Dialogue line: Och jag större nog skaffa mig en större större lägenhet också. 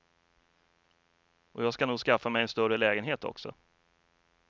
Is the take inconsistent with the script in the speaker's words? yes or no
yes